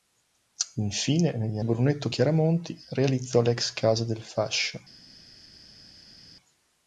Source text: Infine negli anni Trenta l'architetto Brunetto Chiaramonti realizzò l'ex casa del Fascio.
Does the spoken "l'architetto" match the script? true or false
false